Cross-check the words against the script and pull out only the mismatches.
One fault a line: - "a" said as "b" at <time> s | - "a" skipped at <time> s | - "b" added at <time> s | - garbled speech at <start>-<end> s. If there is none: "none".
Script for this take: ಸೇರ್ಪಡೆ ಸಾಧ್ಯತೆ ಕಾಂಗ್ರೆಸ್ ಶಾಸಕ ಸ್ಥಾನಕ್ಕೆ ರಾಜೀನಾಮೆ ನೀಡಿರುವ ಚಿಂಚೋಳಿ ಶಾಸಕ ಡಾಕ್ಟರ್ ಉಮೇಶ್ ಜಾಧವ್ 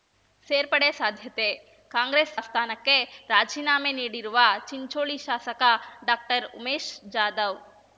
- "ಶಾಸಕ" skipped at 2.3 s